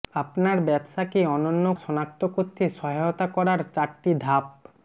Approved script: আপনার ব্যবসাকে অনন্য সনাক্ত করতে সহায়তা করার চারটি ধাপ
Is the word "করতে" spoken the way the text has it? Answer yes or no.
yes